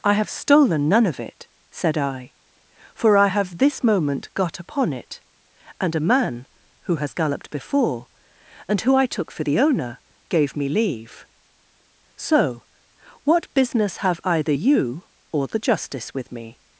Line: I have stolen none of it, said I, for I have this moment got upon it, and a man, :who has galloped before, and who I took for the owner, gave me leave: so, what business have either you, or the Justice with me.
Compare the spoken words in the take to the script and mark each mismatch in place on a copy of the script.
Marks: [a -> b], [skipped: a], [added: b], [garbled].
I have stolen none of it, said I, for I have this moment got upon it, and a man, :who has galloped before, and who I took for the owner, gave me leave: so, what business have either you, or the Justice with me.